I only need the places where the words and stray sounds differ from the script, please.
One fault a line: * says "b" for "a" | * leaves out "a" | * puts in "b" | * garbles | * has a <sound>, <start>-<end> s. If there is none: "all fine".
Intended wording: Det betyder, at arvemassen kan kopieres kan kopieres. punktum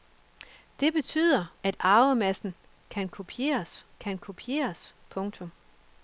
all fine